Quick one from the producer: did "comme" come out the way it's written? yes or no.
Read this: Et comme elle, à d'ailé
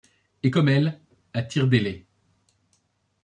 yes